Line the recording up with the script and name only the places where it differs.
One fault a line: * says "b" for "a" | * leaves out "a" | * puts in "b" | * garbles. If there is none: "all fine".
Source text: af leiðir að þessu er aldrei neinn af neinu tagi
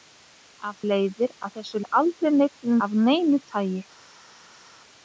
all fine